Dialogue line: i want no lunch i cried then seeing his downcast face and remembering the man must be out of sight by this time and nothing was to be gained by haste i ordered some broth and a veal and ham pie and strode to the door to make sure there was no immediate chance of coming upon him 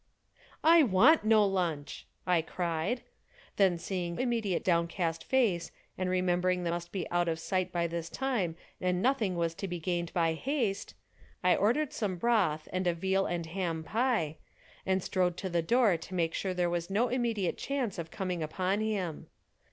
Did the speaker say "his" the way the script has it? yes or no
no